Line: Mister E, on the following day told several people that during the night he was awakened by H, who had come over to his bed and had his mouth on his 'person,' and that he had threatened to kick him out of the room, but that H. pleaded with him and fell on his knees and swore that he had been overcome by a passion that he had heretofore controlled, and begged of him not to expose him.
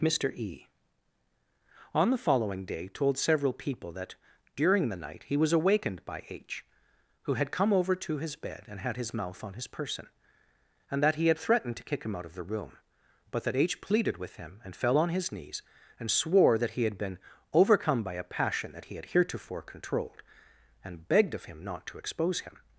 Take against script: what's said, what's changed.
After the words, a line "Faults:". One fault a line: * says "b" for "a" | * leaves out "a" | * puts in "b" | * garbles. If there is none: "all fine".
Mister E, on the following day told several people that during the night he was awakened by H, who had come over to his bed and had his mouth on his 'person,' and that he had threatened to kick him out of the room, but that H. pleaded with him and fell on his knees and swore that he had been overcome by a passion that he had heretofore controlled, and begged of him not to expose him.
Faults:
all fine